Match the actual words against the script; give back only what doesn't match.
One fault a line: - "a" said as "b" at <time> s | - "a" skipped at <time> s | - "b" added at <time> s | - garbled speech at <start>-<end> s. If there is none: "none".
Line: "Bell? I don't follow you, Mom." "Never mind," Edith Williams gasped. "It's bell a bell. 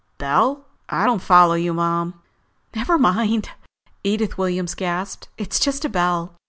- "bell" said as "just" at 5.6 s